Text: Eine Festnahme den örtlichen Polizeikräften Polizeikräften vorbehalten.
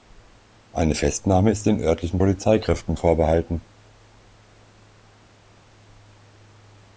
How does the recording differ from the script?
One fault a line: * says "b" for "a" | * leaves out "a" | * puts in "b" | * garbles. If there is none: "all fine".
* puts in "ist"
* leaves out "Polizeikräften"